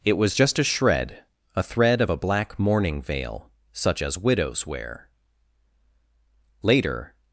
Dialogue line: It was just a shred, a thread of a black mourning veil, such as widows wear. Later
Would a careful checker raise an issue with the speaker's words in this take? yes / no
no